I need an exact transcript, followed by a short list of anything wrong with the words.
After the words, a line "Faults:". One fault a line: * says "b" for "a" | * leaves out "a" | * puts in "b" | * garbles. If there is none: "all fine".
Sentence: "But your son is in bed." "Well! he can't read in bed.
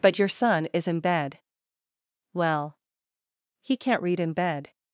"But your son is in bed." "Well! he can't read in bed.
Faults:
all fine